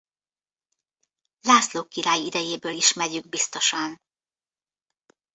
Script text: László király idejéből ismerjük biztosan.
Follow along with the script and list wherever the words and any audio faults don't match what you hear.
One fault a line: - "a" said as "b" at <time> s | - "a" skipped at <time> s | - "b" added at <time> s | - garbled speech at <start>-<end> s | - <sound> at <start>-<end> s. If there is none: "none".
none